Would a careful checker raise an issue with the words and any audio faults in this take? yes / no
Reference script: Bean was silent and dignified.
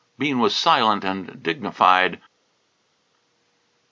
no